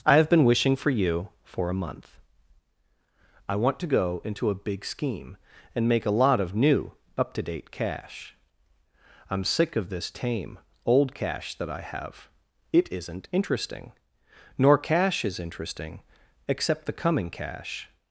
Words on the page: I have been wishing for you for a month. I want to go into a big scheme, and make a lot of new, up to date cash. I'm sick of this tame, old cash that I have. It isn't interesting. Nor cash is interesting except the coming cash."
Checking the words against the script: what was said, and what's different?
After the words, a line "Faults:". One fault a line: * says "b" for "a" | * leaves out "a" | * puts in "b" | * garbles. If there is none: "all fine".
I have been wishing for you for a month. I want to go into a big scheme, and make a lot of new, up to date cash. I'm sick of this tame, old cash that I have. It isn't interesting. Nor cash is interesting except the coming cash."
Faults:
all fine